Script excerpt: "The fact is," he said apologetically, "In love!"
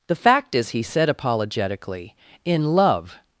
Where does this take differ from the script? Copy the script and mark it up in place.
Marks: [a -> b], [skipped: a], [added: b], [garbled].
"The fact is," he said apologetically, "In love!"